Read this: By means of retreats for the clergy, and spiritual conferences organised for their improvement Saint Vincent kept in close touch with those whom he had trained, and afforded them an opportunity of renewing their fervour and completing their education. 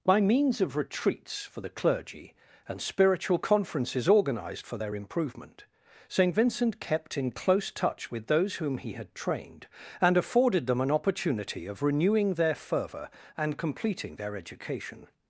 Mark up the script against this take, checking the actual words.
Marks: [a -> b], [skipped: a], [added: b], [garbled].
By means of retreats for the clergy, and spiritual conferences organised for their improvement Saint Vincent kept in close touch with those whom he had trained, and afforded them an opportunity of renewing their fervour and completing their education.